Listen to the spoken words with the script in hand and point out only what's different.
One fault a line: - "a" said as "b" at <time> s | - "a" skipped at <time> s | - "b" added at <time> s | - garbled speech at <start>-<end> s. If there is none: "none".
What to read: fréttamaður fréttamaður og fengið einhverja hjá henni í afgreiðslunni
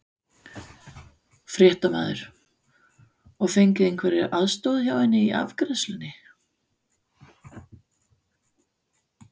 - "fréttamaður" skipped at 2.2 s
- "aðstoð" added at 4.4 s